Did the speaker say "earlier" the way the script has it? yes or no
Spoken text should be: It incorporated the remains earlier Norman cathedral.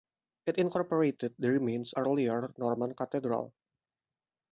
yes